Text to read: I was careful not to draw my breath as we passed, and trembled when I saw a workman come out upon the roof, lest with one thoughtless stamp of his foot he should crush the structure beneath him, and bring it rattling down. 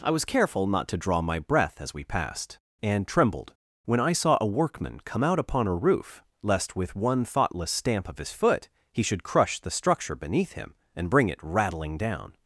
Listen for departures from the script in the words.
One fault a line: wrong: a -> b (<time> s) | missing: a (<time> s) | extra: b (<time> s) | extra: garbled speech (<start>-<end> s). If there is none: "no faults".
wrong: the -> a (5.7 s)